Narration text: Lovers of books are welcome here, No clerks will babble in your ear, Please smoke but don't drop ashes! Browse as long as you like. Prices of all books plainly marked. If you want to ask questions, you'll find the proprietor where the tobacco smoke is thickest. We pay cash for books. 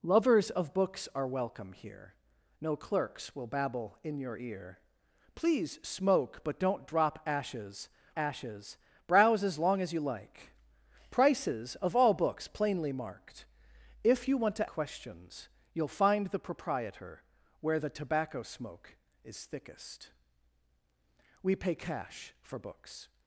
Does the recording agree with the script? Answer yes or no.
no